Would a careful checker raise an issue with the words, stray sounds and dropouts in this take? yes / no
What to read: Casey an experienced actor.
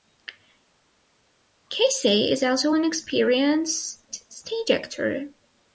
yes